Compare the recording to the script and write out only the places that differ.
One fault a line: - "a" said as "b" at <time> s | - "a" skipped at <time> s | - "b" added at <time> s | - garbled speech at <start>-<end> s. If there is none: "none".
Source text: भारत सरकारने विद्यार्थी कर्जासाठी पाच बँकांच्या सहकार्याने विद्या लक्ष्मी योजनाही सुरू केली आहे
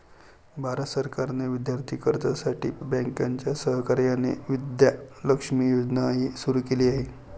- "पाच" skipped at 2.7 s